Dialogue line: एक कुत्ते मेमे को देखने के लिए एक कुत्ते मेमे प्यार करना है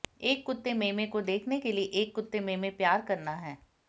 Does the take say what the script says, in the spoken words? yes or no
yes